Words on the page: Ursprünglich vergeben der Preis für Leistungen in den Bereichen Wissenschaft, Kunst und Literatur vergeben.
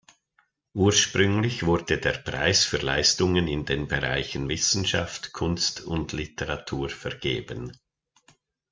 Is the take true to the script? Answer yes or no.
no